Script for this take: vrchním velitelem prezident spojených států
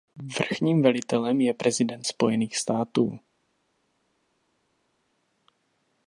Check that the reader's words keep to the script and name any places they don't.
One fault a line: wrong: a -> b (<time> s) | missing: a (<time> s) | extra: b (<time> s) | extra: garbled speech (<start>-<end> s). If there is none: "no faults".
extra: je (1.4 s)